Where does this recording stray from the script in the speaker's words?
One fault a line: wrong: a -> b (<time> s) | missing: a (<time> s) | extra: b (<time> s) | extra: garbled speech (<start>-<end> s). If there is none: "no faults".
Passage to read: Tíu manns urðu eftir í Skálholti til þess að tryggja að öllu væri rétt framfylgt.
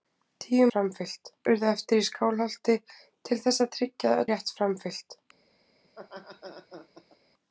wrong: manns -> framfylgt (0.7 s)
missing: öllu væri (4.2 s)